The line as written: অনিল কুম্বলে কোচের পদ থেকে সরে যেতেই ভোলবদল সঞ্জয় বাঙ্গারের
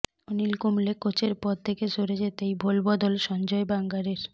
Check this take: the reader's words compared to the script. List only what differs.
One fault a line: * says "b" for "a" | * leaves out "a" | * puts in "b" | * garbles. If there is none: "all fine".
all fine